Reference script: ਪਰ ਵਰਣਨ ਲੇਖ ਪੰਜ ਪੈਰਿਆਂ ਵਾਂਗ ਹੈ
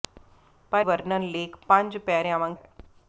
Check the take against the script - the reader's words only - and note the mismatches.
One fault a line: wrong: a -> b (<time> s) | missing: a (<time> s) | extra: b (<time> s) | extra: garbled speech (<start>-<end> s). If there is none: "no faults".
no faults